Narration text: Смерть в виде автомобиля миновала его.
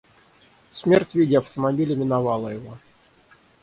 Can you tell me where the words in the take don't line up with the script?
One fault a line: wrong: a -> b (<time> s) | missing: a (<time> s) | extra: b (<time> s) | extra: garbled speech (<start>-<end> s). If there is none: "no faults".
no faults